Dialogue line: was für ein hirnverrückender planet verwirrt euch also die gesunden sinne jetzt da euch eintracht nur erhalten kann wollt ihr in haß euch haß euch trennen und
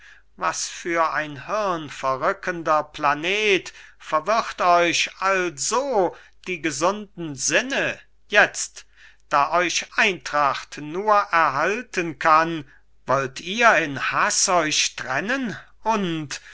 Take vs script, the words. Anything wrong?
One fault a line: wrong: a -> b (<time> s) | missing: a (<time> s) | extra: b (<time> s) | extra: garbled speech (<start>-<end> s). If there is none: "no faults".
missing: haß euch (14.9 s)